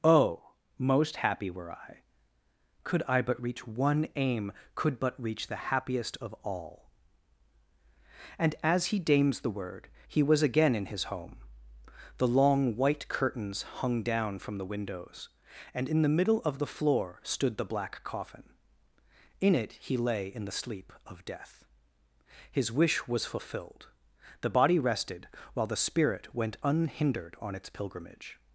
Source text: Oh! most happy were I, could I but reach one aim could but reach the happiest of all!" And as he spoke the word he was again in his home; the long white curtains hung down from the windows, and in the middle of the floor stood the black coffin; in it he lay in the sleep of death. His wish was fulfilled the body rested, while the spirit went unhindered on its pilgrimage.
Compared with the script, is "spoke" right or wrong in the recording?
wrong